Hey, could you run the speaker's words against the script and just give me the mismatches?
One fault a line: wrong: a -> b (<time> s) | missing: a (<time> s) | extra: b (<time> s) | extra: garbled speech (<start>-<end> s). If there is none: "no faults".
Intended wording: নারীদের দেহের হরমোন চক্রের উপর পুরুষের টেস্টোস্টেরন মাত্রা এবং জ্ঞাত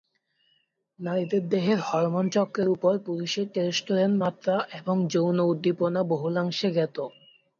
extra: যৌন উদ্দীপনা বহুলাংশে (5.1 s)